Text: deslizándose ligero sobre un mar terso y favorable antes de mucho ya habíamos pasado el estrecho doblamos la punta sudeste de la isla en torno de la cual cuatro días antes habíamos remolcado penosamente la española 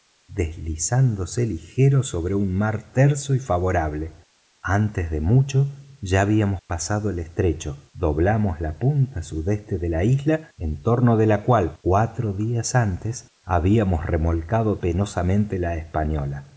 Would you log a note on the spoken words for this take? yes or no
no